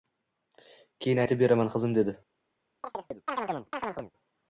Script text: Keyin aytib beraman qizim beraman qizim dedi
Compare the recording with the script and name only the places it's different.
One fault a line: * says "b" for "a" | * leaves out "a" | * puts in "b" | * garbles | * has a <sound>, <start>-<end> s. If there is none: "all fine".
* leaves out "beraman qizim"
* has a chirp, 2.8-4.1 s